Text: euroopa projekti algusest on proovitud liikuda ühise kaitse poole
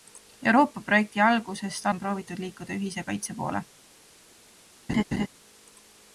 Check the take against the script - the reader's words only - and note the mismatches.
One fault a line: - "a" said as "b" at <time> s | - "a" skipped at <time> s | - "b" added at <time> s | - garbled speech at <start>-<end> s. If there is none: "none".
none